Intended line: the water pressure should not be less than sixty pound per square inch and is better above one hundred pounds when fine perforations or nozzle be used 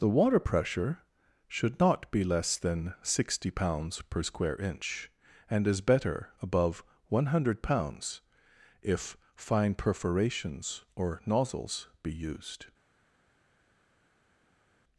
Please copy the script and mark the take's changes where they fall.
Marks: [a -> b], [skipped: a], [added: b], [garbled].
the water pressure should not be less than sixty [pound -> pounds] per square inch and is better above one hundred pounds [when -> if] fine perforations or [nozzle -> nozzles] be used